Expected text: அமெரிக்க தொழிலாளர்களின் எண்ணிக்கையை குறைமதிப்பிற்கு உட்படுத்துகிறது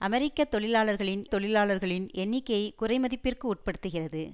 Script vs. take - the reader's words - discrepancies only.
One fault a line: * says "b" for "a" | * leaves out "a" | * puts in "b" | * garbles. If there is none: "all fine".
* puts in "தொழிலாளர்களின்"